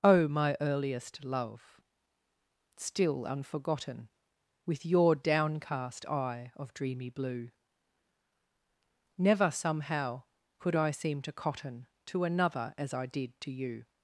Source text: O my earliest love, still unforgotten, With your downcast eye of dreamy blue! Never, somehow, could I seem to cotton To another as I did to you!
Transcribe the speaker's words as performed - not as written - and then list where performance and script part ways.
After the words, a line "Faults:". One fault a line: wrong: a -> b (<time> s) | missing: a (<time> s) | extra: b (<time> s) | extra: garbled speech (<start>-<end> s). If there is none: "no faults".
O my earliest love, still unforgotten, With your downcast eye of dreamy blue! Never, somehow, could I seem to cotton To another as I did to you!
Faults:
no faults